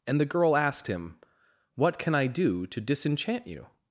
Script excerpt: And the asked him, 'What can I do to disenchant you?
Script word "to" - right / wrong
right